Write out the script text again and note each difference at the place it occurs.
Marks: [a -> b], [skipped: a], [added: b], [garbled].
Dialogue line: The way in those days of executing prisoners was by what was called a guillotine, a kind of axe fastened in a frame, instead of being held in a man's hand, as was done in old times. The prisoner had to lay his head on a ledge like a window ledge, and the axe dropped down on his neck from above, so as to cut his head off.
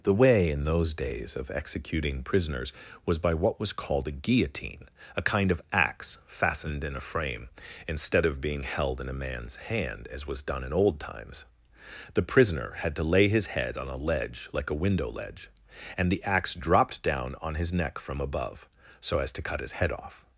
The way in those days of executing prisoners was by what was called a guillotine, a kind of axe fastened in a frame, instead of being held in a man's hand, as was done in old times. The prisoner had to lay his head on a ledge like a window ledge, and the axe dropped down on his neck from above, so as to cut his head off.